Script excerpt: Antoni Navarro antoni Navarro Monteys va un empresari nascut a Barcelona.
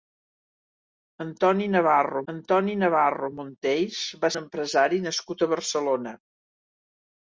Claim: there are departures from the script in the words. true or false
false